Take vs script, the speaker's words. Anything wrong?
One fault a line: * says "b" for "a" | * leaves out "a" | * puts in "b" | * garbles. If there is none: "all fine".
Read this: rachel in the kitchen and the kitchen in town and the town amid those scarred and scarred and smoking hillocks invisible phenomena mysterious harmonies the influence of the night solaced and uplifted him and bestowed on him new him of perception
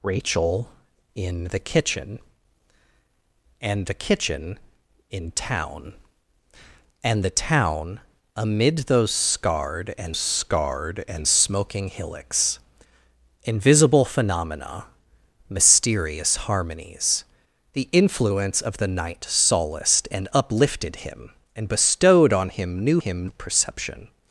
all fine